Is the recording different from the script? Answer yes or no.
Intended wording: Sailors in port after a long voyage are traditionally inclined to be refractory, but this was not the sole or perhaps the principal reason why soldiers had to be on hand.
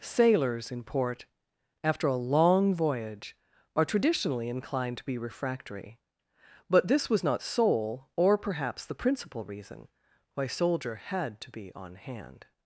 yes